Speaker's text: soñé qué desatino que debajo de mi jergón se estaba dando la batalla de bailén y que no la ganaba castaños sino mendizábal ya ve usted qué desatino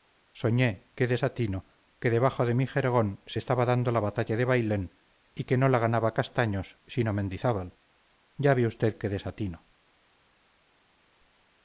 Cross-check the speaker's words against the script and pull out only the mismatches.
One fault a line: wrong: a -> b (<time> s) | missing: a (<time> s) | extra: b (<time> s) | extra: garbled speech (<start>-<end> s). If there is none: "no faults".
no faults